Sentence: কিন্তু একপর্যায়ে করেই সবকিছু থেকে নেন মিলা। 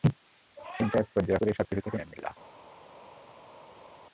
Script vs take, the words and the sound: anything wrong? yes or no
no